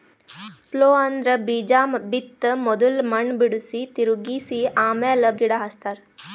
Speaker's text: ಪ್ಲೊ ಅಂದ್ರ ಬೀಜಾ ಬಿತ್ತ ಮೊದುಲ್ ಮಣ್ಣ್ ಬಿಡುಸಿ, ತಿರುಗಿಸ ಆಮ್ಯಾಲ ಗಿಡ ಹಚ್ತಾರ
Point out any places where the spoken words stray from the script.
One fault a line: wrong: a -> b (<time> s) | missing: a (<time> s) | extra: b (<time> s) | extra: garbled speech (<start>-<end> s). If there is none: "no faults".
no faults